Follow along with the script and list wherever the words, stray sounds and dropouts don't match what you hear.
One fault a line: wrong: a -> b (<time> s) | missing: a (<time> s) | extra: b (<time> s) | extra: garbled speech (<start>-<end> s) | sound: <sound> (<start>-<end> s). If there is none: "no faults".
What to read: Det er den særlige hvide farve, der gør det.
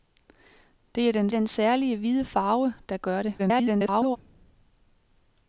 extra: den (1.3 s)
extra: garbled speech (3.4-4.2 s)